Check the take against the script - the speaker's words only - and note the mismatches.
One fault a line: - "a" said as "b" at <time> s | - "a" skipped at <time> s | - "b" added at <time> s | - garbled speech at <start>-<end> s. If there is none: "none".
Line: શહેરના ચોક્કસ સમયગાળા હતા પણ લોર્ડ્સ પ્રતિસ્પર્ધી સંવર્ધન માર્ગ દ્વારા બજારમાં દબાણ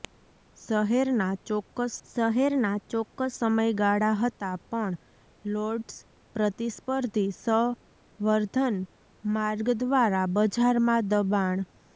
- "શહેરના ચોક્કસ" added at 2.1 s